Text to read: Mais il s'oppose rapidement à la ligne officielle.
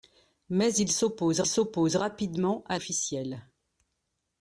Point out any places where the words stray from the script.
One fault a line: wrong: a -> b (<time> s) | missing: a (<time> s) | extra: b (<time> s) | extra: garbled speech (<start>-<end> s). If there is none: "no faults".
extra: s'oppose (1.5 s)
missing: la ligne (2.8 s)